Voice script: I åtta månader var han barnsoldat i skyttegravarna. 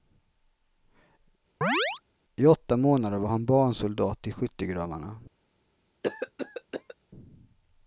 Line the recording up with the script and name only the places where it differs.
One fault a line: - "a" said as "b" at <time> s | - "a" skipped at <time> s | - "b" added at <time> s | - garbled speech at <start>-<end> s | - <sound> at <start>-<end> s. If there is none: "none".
- chirp at 1.6-2.0 s
- cough at 6.0-7.0 s